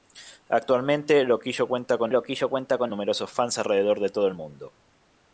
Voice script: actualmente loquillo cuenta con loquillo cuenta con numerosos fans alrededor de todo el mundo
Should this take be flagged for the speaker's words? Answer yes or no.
no